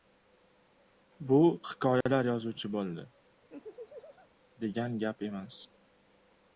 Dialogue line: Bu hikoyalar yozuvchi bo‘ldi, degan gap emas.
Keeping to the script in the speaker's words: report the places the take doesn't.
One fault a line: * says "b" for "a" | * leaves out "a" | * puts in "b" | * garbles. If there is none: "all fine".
all fine